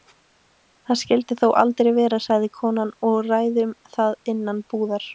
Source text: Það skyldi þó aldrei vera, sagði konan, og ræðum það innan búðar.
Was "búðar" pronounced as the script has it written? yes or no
yes